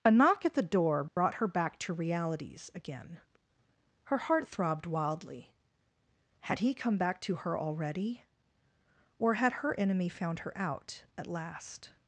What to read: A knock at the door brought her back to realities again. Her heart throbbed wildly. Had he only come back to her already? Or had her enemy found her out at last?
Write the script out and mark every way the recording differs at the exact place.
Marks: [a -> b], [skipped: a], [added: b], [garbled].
A knock at the door brought her back to realities again. Her heart throbbed wildly. Had he [skipped: only] come back to her already? Or had her enemy found her out at last?